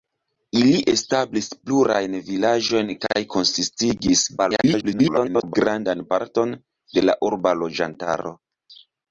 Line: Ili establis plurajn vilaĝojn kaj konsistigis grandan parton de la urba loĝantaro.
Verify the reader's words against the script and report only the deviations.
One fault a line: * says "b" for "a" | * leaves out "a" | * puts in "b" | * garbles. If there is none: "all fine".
* garbles